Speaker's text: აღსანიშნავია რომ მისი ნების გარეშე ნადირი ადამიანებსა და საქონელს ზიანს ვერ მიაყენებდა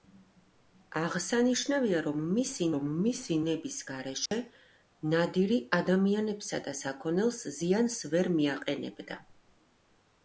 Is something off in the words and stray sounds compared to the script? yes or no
yes